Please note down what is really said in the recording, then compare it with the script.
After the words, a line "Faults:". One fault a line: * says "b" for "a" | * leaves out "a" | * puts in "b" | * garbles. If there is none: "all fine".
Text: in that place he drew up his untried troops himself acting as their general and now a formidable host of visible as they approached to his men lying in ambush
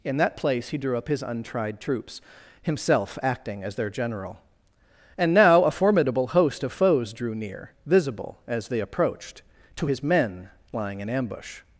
in that place he drew up his untried troops himself acting as their general and now a formidable host of foes drew near visible as they approached to his men lying in ambush
Faults:
* puts in "foes drew near"